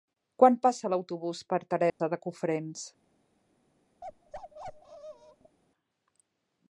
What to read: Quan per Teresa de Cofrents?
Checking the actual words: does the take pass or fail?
fail